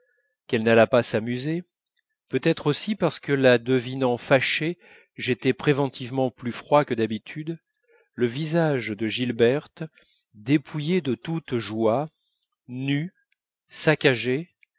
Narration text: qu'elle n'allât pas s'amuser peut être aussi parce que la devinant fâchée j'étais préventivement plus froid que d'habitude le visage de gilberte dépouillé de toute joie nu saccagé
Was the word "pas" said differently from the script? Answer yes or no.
no